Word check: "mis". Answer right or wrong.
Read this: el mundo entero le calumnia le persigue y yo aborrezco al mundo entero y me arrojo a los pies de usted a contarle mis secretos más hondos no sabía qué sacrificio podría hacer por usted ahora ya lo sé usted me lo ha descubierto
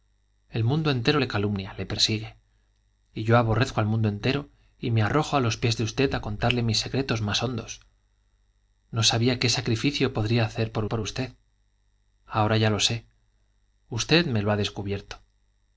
right